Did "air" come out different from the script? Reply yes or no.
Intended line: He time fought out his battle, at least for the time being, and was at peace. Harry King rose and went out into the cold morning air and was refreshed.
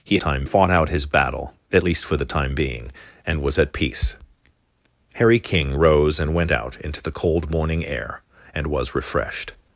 no